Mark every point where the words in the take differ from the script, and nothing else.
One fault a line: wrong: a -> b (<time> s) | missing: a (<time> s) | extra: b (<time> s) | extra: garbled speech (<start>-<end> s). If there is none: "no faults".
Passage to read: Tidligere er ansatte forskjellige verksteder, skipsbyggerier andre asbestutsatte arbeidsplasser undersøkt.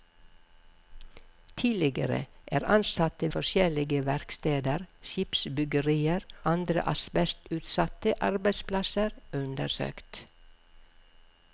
no faults